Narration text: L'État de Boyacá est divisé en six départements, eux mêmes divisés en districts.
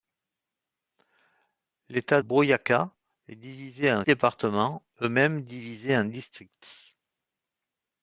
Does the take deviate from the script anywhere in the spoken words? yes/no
yes